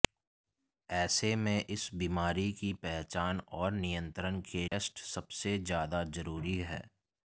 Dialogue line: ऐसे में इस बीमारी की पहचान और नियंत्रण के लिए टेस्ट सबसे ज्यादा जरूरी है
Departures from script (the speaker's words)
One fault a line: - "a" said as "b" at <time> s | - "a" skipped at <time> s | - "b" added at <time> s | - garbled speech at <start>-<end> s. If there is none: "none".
- "लिए" skipped at 4.7 s